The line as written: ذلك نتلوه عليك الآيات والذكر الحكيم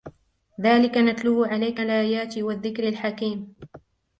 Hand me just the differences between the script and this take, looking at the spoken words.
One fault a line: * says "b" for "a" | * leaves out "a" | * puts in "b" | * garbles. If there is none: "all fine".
all fine